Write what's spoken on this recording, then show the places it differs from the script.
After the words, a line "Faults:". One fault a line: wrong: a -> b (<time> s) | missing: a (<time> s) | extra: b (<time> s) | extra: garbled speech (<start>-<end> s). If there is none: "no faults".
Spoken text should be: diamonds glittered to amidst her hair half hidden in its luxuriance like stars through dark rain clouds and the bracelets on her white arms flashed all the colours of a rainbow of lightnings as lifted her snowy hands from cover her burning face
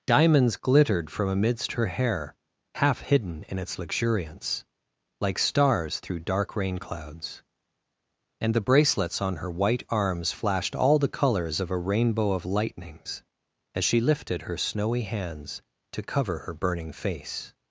diamonds glittered from amidst her hair half hidden in its luxuriance like stars through dark rain clouds and the bracelets on her white arms flashed all the colours of a rainbow of lightnings as she lifted her snowy hands to cover her burning face
Faults:
wrong: to -> from (1.1 s)
extra: she (13.8 s)
wrong: from -> to (15.9 s)